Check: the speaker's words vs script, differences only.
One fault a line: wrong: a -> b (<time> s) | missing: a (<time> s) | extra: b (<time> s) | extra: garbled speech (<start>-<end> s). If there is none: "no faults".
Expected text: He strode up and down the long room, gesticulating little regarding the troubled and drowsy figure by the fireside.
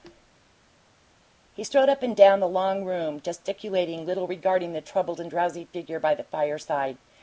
no faults